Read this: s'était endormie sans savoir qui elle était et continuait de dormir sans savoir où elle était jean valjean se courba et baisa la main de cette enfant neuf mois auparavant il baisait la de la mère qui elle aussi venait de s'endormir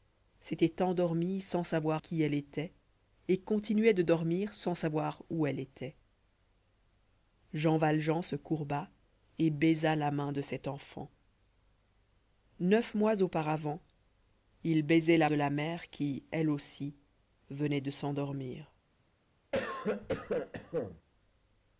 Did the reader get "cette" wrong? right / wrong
right